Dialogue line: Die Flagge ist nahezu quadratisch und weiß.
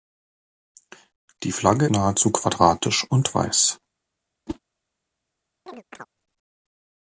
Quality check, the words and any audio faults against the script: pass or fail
fail